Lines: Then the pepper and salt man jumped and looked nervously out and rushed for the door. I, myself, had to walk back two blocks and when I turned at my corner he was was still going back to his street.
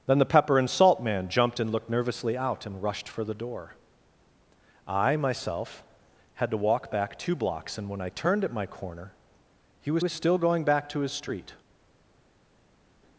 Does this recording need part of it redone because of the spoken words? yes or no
no